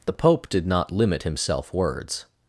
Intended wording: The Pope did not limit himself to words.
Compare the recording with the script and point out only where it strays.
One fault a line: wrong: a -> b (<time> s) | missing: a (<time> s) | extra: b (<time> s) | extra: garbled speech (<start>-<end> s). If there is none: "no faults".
missing: to (1.7 s)